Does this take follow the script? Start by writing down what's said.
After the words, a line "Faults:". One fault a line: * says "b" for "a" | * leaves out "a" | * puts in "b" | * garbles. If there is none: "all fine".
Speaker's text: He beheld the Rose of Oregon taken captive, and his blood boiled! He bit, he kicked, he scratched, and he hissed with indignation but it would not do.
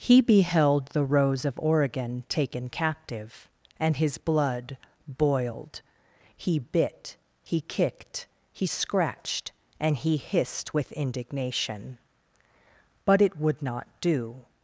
He beheld the Rose of Oregon taken captive, and his blood boiled! He bit, he kicked, he scratched, and he hissed with indignation but it would not do.
Faults:
all fine